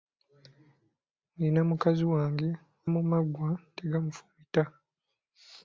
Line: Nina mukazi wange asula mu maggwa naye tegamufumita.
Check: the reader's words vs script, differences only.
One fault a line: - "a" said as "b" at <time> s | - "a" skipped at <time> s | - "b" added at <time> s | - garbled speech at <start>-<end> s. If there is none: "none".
- "asula" skipped at 2.5 s
- "naye" skipped at 3.5 s